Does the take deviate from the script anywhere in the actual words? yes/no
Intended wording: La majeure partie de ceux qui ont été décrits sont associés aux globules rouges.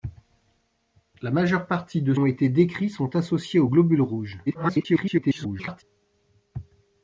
yes